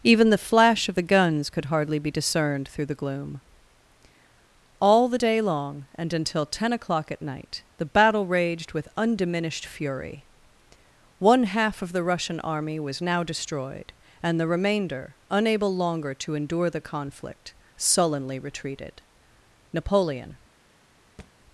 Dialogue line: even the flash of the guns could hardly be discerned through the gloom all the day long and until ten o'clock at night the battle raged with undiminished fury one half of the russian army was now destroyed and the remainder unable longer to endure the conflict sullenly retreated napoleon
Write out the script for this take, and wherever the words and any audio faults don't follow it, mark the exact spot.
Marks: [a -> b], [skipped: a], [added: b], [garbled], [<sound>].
even the flash of the guns could hardly be discerned through the gloom all the day long and until ten o'clock at night the battle raged with undiminished fury one half of the russian army was now destroyed and the remainder unable longer to endure the conflict sullenly retreated napoleon [thud]